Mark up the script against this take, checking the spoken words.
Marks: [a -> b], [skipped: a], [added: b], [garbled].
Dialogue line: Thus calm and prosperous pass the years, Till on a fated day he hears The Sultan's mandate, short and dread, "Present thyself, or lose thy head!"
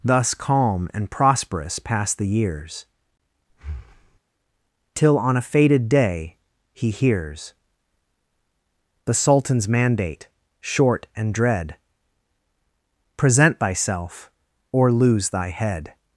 Thus calm and prosperous pass the years, Till on a fated day he hears The Sultan's mandate, short and dread, "Present thyself, or lose thy head!"